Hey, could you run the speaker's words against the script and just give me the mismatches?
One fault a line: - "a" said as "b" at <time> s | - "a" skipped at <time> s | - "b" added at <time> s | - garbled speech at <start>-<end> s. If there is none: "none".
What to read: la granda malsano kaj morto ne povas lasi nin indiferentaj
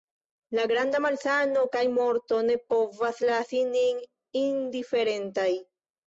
none